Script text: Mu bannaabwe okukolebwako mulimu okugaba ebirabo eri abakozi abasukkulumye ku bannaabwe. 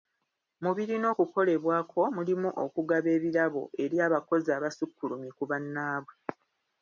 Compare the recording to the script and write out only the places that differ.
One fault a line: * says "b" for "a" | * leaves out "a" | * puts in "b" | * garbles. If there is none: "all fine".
* says "birina" for "bannaabwe"